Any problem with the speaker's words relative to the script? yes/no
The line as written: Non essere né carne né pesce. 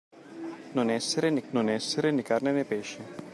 yes